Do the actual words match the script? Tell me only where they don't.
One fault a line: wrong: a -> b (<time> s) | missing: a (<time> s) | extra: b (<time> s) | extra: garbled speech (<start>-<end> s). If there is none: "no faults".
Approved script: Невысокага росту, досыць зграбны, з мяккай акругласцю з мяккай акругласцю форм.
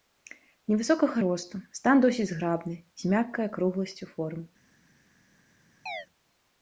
extra: стан (1.8 s)
missing: з мяккай акругласцю (4.1 s)